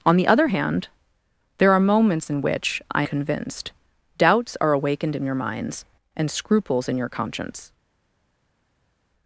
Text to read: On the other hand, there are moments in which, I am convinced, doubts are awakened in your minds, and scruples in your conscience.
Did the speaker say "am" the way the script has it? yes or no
no